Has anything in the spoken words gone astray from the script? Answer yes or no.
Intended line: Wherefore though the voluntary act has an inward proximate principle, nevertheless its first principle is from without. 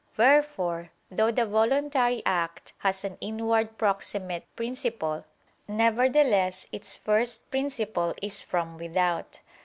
no